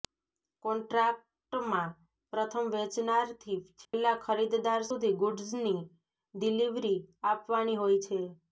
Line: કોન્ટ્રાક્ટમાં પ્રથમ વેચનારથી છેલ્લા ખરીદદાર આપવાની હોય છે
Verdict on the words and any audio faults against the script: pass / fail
fail